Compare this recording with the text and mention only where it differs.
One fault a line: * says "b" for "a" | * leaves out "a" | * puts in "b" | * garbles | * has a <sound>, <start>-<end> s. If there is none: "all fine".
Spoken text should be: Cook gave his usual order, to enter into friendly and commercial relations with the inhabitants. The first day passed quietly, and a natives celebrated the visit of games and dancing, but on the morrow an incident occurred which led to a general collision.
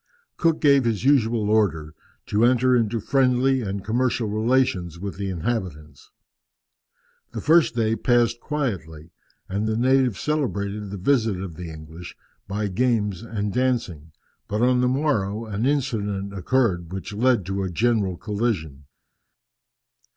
* says "the" for "a"
* puts in "the English by"